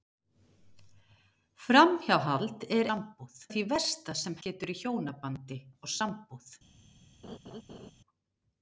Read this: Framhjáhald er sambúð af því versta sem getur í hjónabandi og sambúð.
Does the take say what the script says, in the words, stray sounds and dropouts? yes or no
no